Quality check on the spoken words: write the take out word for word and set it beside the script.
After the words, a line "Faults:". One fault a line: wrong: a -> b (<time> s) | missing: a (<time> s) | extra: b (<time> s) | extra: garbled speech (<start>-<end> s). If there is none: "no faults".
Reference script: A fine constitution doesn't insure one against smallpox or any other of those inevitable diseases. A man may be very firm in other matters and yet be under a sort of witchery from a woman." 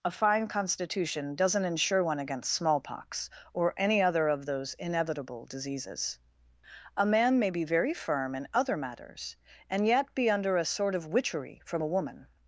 A fine constitution doesn't insure one against smallpox or any other of those inevitable diseases. A man may be very firm in other matters and yet be under a sort of witchery from a woman."
Faults:
no faults